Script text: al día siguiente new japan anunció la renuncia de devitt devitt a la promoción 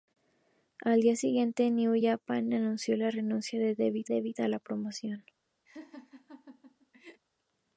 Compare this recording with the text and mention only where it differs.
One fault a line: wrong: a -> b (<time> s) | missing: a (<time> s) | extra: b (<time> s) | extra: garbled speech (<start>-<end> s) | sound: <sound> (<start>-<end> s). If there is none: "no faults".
sound: laugh (5.7-7.2 s)